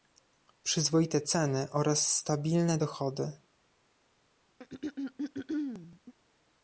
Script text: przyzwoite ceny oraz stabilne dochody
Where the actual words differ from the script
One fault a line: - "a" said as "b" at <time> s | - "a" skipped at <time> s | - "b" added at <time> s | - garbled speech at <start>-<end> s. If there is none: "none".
none